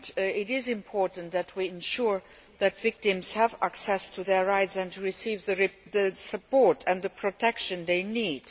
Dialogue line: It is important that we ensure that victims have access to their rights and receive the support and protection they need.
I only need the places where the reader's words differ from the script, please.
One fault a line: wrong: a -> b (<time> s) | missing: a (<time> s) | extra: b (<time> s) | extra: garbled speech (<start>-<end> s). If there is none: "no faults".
no faults